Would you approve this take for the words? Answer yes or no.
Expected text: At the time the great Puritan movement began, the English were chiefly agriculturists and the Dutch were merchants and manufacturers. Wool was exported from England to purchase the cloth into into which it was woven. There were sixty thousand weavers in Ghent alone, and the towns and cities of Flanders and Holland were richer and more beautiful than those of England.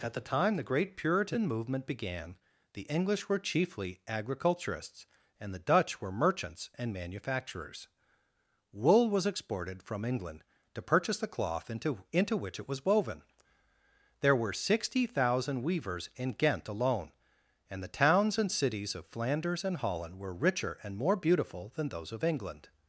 yes